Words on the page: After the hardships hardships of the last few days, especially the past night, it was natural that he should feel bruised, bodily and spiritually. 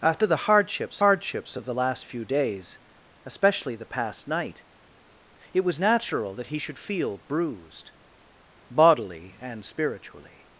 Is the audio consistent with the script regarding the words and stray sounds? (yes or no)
yes